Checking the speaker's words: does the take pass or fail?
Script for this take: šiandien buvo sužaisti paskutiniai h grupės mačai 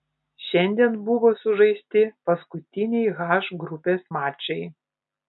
pass